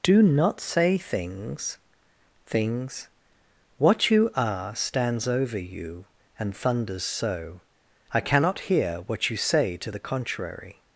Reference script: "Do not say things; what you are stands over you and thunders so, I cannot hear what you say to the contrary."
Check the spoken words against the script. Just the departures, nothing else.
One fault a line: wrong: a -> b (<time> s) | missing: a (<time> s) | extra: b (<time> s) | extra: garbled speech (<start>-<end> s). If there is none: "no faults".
extra: things (2.5 s)